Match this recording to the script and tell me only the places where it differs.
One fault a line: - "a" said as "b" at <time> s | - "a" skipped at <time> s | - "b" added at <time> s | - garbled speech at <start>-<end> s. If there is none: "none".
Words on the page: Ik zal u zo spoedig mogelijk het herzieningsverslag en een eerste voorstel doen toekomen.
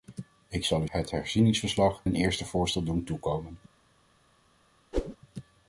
- "zo spoedig mogelijk" skipped at 0.9 s
- "en" skipped at 2.0 s